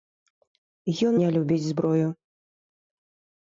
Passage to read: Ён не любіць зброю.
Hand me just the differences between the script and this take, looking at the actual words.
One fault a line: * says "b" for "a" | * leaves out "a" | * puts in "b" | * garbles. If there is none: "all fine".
all fine